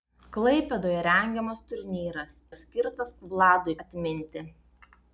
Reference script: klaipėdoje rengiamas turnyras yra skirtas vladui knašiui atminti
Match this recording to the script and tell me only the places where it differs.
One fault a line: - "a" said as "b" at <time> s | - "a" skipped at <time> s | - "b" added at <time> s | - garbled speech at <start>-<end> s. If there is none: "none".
- "yra" skipped at 2.3 s
- "knašiui" skipped at 3.7 s